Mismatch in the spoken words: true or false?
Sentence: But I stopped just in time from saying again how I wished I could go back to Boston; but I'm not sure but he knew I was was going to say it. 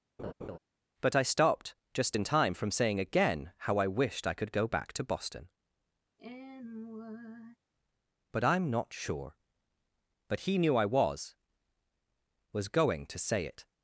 false